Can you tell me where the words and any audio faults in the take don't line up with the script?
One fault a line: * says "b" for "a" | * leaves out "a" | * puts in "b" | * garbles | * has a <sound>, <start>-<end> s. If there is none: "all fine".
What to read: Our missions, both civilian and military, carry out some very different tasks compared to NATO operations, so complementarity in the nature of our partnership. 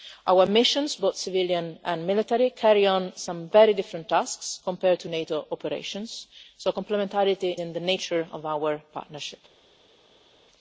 all fine